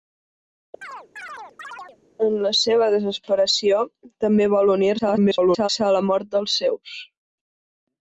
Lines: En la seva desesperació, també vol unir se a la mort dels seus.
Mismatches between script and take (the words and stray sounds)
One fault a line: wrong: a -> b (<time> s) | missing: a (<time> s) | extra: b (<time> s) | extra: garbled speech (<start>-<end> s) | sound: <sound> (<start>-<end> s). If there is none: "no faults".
sound: chirp (0.8-2.0 s)
extra: garbled speech (5.0-5.7 s)